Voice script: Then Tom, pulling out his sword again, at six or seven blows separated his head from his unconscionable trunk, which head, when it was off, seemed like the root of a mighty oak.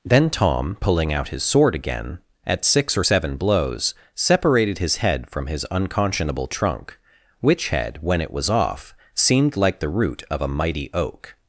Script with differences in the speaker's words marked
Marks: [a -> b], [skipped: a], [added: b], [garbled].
Then Tom, pulling out his sword again, at six or seven blows separated his head from his unconscionable trunk, which head, when it was off, seemed like the root of a mighty oak.